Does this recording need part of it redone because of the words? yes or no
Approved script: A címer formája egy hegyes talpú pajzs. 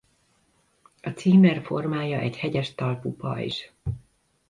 no